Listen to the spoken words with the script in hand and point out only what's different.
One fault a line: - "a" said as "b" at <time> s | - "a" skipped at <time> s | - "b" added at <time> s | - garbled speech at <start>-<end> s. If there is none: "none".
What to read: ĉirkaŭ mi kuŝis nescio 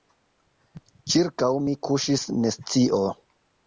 none